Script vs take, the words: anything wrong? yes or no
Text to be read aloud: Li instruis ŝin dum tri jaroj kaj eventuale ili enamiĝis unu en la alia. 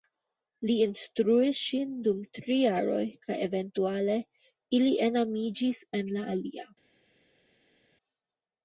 yes